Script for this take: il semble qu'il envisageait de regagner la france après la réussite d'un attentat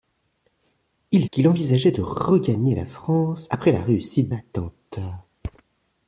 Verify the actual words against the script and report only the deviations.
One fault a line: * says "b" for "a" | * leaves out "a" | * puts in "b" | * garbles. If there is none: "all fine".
* leaves out "semble"
* leaves out "d'un"